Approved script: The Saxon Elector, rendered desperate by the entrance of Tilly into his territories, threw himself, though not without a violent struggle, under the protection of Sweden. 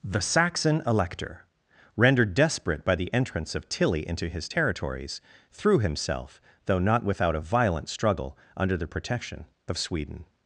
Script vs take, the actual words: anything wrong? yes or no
no